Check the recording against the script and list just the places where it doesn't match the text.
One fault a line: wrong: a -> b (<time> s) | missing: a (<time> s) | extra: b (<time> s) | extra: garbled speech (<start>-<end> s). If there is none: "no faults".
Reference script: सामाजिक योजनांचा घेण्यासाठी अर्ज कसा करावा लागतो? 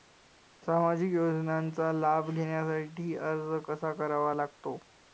extra: लाभ (1.9 s)